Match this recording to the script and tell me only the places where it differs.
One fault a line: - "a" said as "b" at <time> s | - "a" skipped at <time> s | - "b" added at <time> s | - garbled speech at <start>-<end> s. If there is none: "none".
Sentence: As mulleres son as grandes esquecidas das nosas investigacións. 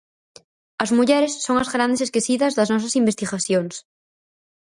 none